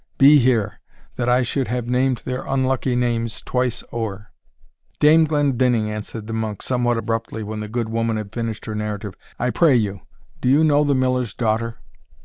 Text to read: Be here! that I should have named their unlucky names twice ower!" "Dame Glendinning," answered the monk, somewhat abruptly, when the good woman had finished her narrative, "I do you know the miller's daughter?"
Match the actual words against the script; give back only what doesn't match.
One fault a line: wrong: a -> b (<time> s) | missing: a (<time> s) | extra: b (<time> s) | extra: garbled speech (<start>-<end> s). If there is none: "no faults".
extra: pray you (9.5 s)